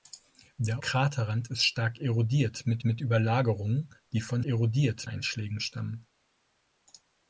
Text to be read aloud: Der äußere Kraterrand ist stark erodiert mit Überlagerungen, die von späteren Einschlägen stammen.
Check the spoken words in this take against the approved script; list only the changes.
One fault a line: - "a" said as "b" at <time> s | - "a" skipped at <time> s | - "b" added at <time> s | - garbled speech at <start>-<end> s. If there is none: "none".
- "äußere" skipped at 0.8 s
- "mit" added at 2.8 s
- "späteren" said as "erodiert" at 4.4 s